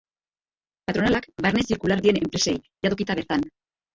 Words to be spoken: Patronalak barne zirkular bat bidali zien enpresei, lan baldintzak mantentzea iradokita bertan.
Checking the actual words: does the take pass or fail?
fail